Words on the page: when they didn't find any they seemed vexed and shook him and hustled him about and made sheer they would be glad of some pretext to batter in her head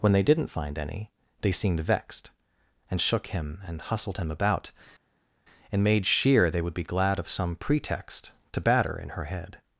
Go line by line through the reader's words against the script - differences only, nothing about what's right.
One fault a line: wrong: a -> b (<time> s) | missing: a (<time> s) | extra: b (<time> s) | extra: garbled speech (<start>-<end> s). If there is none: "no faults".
no faults